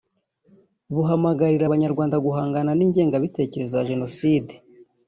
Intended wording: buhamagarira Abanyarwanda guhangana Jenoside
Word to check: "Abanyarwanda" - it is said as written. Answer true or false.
true